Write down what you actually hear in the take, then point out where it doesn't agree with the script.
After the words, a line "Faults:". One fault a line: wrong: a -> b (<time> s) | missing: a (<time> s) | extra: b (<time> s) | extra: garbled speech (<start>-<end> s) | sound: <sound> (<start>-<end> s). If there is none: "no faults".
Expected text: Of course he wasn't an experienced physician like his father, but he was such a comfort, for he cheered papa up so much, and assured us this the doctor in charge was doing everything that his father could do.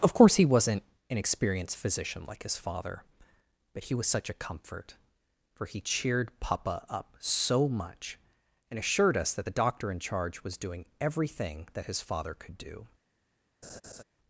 Of course he wasn't an experienced physician like his father, but he was such a comfort, for he cheered papa up so much, and assured us that the doctor in charge was doing everything that his father could do.
Faults:
wrong: this -> that (9.3 s)
sound: laugh (13.6-14.0 s)